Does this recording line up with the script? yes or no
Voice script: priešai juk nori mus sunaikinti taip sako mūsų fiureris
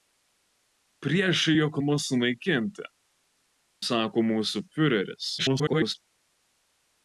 no